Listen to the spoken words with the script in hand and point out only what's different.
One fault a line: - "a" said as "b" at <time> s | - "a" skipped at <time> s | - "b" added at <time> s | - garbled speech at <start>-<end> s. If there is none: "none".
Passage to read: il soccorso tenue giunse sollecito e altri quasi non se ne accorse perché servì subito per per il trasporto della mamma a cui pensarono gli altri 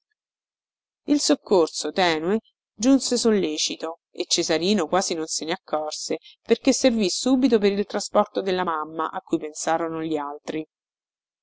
- "altri" said as "cesarino" at 4.2 s
- "per" skipped at 7.7 s